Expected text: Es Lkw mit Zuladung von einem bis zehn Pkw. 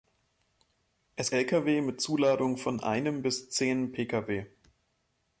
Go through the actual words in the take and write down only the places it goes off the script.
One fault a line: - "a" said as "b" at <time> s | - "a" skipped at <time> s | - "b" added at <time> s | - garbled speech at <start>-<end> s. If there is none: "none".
none